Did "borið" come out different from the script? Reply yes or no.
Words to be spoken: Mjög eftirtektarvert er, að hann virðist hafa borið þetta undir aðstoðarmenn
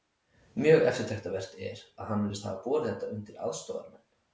no